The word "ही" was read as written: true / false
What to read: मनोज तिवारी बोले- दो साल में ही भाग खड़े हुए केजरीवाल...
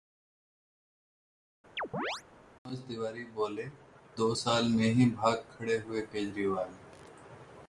true